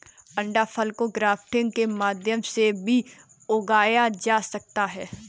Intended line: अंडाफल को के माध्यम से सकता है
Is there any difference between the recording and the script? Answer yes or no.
yes